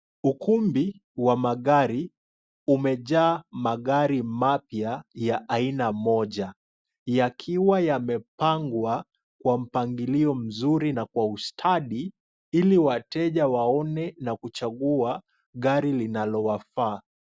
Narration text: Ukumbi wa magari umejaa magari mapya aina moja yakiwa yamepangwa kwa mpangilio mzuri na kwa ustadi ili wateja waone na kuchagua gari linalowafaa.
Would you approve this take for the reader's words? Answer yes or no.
no